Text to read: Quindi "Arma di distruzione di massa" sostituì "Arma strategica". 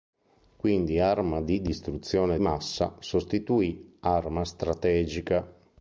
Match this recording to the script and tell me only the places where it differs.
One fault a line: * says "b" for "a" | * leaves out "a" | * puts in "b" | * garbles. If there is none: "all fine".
* leaves out "di"